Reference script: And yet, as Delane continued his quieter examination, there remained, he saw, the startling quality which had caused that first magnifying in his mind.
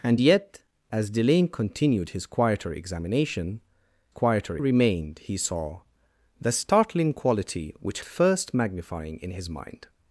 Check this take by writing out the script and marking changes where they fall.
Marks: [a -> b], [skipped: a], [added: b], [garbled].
And yet, as Delane continued his quieter examination, [there -> quieter] remained, he saw, the startling quality which [skipped: had caused that] first magnifying in his mind.